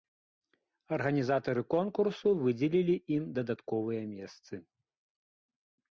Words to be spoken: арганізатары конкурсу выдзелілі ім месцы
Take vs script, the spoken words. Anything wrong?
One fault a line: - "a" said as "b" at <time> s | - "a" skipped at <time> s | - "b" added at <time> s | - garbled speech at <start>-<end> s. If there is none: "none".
- "дадатковыя" added at 3.4 s